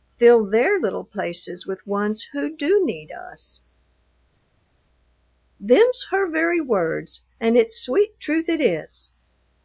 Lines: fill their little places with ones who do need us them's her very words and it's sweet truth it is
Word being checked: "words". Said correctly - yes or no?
yes